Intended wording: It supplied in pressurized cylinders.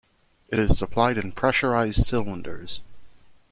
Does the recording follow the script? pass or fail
fail